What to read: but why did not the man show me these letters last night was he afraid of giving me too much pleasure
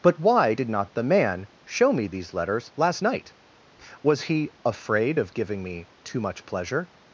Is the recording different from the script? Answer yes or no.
no